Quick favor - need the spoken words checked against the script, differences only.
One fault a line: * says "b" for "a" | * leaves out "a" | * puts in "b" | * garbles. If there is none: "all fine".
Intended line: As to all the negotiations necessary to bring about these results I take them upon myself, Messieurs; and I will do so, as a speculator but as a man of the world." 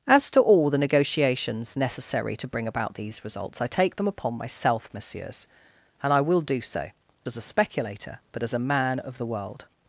all fine